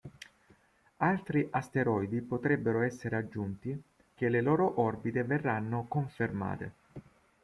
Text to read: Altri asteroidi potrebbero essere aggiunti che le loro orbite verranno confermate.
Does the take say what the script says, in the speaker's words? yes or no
yes